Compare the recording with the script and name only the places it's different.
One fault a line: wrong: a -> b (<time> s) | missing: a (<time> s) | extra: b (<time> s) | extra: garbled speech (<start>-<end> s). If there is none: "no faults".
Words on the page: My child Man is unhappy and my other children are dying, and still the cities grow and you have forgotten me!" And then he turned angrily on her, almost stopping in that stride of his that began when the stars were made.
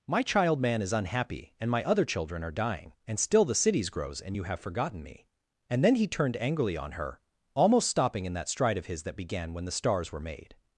wrong: grow -> grows (3.9 s)